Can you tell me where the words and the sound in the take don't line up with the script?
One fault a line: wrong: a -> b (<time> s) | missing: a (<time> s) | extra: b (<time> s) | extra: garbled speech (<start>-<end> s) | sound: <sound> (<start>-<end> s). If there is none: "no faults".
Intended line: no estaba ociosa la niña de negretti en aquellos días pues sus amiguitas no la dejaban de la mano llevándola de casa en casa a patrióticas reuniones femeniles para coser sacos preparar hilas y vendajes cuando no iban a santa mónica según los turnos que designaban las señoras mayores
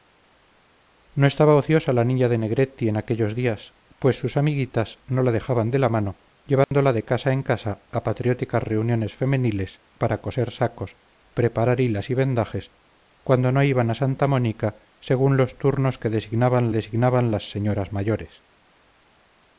sound: dropout (6.6-6.7 s)
extra: designaban (16.7 s)